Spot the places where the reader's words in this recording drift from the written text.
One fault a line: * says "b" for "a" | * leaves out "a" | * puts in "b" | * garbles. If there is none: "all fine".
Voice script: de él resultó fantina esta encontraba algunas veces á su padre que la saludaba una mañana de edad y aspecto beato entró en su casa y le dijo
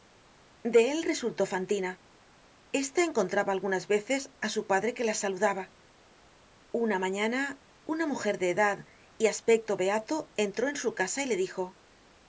* puts in "una mujer"